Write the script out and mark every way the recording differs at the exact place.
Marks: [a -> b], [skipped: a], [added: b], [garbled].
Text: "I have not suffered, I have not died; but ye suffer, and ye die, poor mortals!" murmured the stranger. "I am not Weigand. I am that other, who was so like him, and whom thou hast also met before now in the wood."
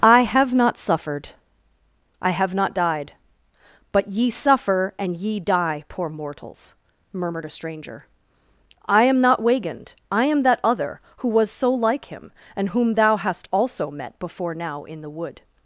"I have not suffered, I have not died; but ye suffer, and ye die, poor mortals!" murmured [the -> a] stranger. "I am not Weigand. I am that other, who was so like him, and whom thou hast also met before now in the wood."